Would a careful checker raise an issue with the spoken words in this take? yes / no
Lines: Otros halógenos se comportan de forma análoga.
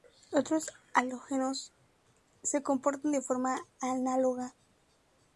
no